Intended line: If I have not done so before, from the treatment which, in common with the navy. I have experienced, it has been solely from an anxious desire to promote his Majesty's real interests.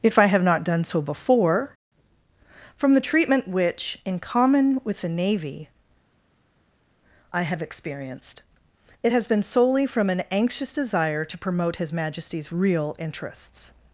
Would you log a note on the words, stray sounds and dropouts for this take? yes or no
no